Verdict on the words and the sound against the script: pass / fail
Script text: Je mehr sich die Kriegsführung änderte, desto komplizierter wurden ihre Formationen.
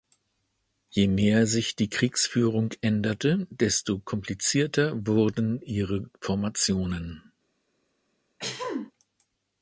fail